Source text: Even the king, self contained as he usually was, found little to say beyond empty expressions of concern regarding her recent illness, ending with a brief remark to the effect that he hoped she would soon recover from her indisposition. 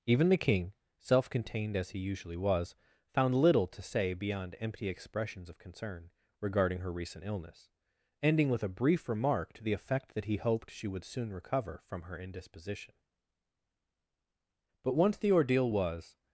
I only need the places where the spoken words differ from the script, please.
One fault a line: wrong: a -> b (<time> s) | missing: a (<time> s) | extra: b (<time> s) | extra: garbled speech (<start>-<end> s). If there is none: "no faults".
extra: But once the ordeal was (14.8 s)